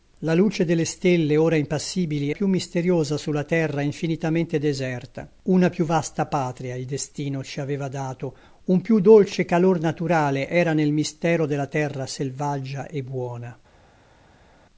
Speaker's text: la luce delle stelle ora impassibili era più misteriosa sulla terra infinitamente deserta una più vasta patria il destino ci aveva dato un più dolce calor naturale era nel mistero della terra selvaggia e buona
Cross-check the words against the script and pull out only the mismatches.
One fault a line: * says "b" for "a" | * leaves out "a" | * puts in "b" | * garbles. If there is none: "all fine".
* leaves out "era"